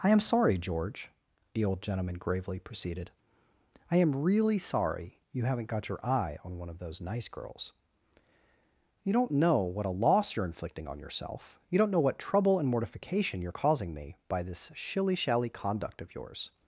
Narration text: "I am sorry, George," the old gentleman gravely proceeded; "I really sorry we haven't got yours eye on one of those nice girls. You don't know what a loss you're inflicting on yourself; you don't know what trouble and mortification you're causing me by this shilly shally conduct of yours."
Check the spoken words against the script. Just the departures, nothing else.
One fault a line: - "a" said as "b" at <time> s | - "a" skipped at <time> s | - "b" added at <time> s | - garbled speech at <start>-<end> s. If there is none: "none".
- "am" added at 4.0 s
- "we" said as "you" at 5.3 s
- "yours" said as "your" at 5.9 s